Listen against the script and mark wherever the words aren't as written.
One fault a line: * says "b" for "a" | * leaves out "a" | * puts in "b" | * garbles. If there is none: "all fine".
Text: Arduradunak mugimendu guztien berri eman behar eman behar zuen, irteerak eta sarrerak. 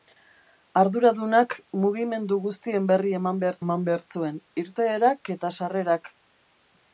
all fine